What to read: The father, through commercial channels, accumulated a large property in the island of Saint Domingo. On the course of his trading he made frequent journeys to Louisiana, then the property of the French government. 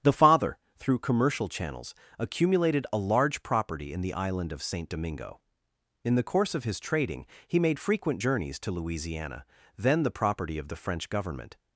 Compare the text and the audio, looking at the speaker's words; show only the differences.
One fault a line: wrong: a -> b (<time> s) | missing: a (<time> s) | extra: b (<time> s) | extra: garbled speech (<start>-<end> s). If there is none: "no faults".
wrong: On -> In (6.0 s)